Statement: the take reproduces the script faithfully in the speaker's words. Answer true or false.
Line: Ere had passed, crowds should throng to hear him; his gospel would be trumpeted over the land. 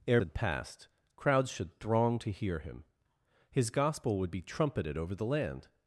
true